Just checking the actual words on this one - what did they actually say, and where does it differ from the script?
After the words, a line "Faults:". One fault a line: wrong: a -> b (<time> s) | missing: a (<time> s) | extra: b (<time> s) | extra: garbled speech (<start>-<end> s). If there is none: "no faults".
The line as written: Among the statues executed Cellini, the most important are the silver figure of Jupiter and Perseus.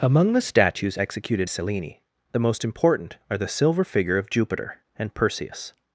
Among the statues executed Cellini, the most important are the silver figure of Jupiter and Perseus.
Faults:
no faults